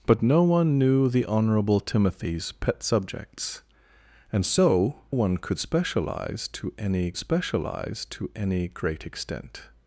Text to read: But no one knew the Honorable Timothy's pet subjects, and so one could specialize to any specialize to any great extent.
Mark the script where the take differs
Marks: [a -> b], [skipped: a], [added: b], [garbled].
But no one knew the Honorable Timothy's pet subjects, and so one could specialize to any specialize to any great extent.